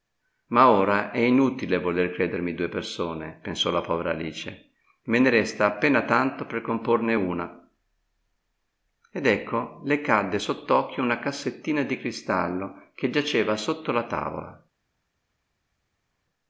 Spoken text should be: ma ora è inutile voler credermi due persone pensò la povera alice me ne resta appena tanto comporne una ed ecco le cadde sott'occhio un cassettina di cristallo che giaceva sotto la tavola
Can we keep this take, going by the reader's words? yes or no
no